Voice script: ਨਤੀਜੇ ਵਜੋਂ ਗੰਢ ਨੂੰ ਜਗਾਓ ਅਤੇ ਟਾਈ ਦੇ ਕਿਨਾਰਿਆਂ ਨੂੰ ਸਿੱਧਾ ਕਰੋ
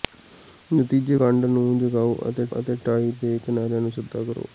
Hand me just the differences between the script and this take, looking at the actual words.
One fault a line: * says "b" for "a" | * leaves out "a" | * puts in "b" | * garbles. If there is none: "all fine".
* leaves out "ਵਜੋਂ"
* puts in "ਅਤੇ"